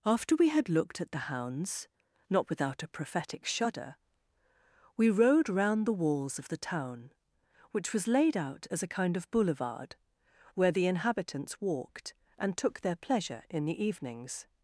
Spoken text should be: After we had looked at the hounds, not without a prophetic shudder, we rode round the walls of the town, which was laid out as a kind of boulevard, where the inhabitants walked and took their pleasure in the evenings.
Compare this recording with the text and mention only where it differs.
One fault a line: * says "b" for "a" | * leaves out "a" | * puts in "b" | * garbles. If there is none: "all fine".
all fine